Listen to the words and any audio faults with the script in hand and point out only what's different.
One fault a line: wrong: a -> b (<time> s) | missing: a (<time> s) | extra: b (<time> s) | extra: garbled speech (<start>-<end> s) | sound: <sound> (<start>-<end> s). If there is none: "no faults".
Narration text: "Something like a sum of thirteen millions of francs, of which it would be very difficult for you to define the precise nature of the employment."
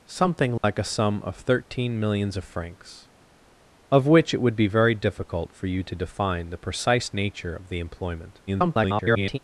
sound: dropout (0.6-0.6 s)
extra: garbled speech (8.5-9.4 s)